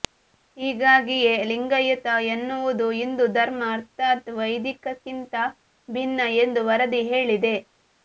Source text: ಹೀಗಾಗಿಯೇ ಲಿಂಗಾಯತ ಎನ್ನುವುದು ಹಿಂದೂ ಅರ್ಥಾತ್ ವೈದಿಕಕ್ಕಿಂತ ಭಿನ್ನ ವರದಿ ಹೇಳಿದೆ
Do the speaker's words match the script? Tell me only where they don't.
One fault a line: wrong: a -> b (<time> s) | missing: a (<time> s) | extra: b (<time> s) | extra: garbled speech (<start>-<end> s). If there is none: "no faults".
extra: ಧರ್ಮ (3.4 s)
extra: ಎಂದು (6.4 s)